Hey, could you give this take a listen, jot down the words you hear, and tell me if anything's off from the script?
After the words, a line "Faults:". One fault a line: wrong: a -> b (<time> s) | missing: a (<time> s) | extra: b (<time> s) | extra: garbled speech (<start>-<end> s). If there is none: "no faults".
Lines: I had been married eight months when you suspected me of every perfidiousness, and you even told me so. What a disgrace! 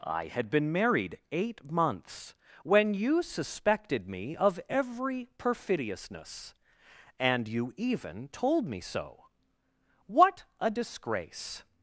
I had been married eight months when you suspected me of every perfidiousness, and you even told me so. What a disgrace!
Faults:
no faults